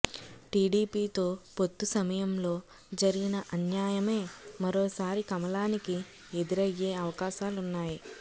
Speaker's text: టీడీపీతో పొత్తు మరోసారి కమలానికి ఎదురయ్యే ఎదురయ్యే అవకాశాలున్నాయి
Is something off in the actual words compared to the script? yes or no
yes